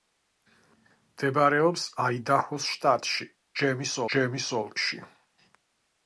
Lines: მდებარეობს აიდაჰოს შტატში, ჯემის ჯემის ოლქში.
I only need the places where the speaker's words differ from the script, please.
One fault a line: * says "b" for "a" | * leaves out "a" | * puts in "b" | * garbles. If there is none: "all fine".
all fine